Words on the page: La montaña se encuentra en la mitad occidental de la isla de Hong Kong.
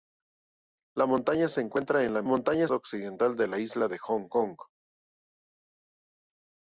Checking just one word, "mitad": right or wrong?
wrong